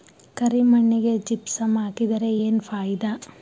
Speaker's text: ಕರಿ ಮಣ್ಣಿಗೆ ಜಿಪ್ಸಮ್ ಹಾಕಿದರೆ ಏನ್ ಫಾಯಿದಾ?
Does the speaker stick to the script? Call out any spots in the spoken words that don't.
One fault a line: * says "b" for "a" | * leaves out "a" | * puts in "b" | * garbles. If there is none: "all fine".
all fine